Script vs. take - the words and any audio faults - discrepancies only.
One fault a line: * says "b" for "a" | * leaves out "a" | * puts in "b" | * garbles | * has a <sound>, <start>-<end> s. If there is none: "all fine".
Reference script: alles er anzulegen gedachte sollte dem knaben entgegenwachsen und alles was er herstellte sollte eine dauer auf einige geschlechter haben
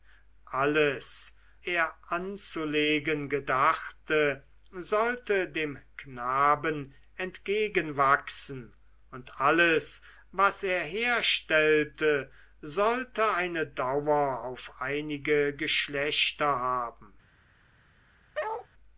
* has a bark, 18.3-18.7 s